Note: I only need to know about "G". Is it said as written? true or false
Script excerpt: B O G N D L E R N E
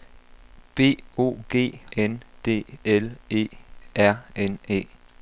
true